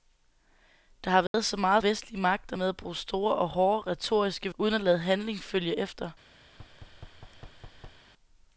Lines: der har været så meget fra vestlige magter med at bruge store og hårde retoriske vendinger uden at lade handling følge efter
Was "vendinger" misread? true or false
true